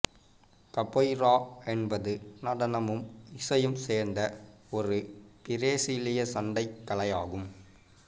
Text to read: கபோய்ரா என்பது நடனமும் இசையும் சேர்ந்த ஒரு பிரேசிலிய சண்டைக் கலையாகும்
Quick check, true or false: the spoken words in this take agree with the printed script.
true